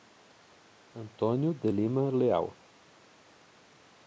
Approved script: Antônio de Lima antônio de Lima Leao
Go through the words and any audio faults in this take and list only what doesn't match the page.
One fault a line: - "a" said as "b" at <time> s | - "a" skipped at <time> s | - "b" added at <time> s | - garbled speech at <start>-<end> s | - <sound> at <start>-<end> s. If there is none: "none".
- "antônio de Lima" skipped at 2.1 s